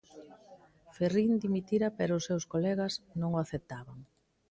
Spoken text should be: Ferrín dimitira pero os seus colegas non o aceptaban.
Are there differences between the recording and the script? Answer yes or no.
no